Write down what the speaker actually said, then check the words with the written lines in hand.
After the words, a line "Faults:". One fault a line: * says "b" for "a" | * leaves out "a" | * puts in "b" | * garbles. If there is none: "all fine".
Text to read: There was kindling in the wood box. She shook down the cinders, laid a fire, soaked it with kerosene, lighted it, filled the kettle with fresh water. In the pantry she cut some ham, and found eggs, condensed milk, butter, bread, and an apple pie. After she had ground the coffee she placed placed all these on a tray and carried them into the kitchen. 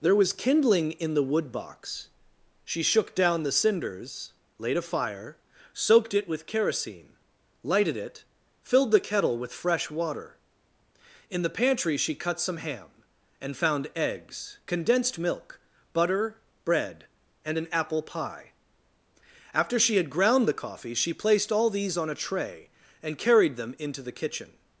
There was kindling in the wood box. She shook down the cinders, laid a fire, soaked it with kerosene, lighted it, filled the kettle with fresh water. In the pantry she cut some ham, and found eggs, condensed milk, butter, bread, and an apple pie. After she had ground the coffee she placed all these on a tray and carried them into the kitchen.
Faults:
* leaves out "placed"